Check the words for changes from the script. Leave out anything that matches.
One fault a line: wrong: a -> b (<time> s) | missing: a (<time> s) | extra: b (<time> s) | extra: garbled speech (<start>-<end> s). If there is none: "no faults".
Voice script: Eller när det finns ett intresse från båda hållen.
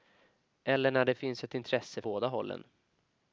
missing: från (2.0 s)